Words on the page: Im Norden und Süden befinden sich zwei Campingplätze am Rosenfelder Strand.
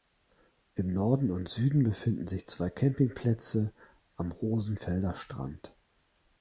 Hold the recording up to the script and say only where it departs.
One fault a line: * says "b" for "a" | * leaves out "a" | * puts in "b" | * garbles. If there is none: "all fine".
all fine